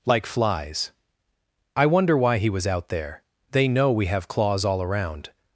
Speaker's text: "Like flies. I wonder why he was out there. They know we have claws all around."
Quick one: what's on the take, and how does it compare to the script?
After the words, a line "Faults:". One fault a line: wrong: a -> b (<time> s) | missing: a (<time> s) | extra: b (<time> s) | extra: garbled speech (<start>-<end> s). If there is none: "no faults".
"Like flies. I wonder why he was out there. They know we have claws all around."
Faults:
no faults